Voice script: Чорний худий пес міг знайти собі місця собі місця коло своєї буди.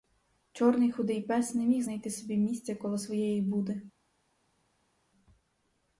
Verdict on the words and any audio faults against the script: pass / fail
fail